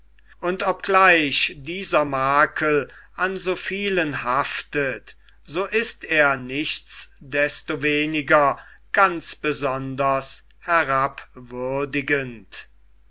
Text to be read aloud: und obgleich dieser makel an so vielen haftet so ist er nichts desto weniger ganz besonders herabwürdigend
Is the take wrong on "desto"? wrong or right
right